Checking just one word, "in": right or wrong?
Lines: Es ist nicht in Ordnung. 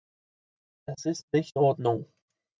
wrong